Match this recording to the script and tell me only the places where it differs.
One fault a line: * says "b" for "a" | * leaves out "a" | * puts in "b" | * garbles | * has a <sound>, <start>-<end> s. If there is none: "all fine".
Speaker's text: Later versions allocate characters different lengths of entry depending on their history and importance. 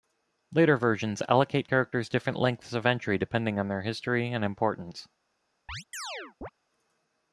* has a chirp, 5.7-6.5 s